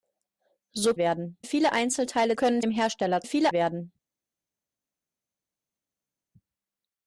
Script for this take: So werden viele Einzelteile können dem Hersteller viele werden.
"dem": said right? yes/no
yes